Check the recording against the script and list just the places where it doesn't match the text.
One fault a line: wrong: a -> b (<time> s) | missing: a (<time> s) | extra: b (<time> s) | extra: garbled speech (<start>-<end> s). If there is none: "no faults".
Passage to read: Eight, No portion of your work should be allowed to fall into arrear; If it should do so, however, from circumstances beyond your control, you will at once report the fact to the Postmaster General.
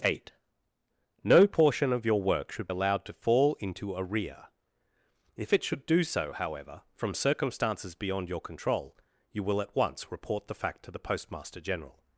missing: be (2.7 s)